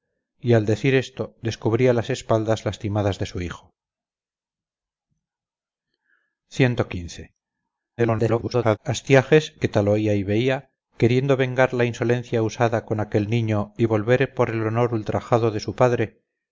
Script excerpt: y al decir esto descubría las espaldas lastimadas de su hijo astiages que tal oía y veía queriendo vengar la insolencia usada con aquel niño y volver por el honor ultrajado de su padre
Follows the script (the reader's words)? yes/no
no